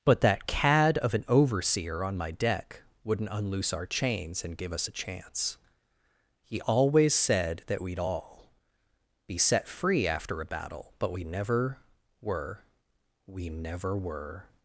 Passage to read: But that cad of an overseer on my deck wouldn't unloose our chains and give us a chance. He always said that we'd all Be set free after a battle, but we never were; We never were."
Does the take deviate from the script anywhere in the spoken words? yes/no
no